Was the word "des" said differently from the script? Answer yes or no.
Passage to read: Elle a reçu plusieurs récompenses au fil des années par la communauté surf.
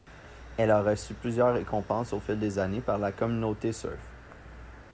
no